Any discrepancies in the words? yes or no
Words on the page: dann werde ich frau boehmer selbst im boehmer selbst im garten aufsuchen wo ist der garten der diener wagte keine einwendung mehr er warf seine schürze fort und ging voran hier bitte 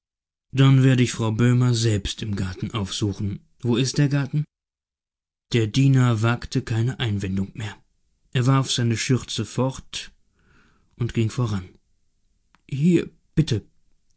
yes